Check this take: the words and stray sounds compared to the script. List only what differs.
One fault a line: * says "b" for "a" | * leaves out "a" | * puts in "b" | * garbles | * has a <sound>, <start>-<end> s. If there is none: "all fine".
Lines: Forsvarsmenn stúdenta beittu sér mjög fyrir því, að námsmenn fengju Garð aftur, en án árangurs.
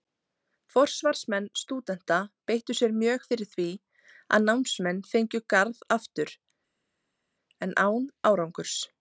all fine